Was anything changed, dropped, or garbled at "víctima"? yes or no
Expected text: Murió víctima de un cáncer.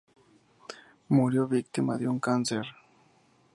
no